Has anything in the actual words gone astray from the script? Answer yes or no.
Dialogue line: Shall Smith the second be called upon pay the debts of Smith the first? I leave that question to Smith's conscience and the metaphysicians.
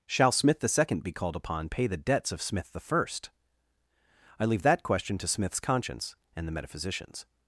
no